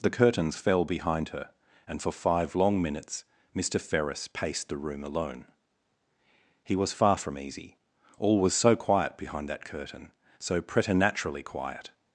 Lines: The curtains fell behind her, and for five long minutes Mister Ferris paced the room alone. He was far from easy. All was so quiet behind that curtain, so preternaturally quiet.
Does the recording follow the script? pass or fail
pass